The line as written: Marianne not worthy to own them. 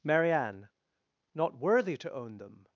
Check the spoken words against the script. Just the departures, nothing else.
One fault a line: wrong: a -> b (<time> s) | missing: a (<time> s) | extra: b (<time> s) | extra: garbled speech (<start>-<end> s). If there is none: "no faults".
no faults